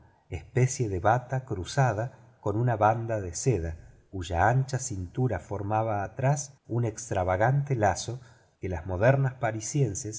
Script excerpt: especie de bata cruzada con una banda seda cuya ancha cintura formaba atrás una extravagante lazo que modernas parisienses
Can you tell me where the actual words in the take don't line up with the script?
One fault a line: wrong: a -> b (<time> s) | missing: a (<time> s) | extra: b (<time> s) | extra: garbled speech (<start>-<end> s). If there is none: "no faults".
extra: de (3.2 s)
wrong: una -> un (6.7 s)
extra: las (8.7 s)